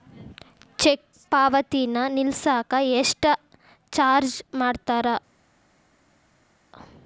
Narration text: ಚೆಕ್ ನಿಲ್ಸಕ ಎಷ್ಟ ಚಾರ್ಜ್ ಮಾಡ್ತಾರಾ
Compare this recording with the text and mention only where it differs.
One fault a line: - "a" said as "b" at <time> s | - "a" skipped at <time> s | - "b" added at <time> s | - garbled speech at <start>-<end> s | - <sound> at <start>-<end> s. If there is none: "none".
- "ಪಾವತಿನ" added at 1.3 s